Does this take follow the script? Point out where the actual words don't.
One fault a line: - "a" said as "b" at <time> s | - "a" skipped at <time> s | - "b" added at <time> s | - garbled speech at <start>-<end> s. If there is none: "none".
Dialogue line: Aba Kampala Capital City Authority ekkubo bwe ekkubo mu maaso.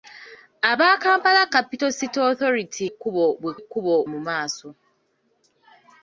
none